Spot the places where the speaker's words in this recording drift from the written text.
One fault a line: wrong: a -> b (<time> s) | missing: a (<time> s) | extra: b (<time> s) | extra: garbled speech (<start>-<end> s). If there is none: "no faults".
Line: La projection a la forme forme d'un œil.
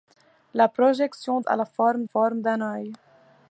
no faults